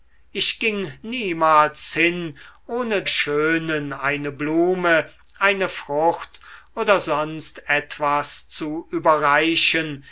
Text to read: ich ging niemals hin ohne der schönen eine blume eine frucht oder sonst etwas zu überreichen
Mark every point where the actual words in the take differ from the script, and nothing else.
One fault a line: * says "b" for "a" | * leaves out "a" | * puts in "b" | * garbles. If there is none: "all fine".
* leaves out "der"